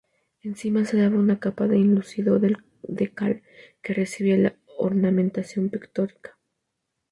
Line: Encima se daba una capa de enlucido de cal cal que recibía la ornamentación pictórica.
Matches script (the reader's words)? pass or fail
fail